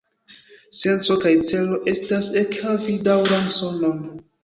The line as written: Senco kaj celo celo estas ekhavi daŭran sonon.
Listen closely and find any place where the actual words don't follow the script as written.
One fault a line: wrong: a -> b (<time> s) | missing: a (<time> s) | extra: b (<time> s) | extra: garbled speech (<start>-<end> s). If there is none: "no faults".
missing: celo (1.8 s)